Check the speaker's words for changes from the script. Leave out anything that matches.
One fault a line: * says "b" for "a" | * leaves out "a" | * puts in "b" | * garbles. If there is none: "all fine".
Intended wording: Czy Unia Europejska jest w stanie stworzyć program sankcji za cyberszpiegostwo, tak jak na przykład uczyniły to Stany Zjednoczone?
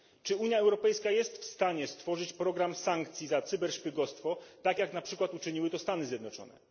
all fine